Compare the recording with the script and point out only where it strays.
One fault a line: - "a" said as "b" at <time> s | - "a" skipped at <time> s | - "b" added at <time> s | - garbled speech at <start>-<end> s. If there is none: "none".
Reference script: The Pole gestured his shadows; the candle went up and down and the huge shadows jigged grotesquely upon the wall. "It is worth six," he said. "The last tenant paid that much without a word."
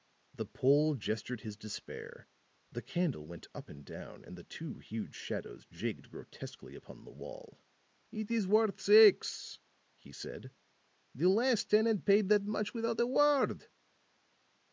- "shadows" said as "despair" at 1.6 s
- "two" added at 4.4 s